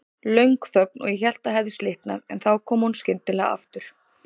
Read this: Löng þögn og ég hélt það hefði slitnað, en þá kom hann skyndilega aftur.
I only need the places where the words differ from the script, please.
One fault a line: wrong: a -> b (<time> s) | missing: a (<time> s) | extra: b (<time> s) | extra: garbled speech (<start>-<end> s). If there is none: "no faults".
wrong: hann -> hún (2.9 s)